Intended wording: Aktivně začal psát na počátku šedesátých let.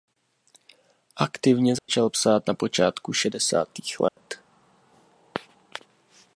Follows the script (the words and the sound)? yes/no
no